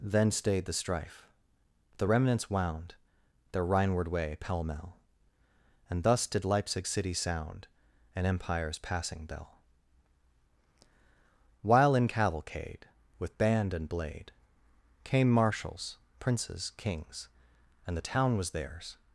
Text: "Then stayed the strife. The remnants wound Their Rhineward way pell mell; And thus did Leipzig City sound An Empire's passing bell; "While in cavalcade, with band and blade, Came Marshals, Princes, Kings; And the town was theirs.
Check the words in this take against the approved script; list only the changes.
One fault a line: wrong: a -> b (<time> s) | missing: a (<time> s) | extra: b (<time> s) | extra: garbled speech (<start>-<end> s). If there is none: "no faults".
no faults